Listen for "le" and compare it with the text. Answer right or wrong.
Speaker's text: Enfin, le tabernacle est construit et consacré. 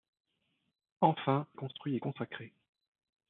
wrong